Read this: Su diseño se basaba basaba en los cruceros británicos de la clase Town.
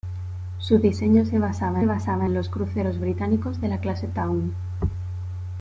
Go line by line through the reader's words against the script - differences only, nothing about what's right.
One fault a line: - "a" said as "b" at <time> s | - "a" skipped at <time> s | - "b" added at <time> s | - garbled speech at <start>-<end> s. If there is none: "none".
none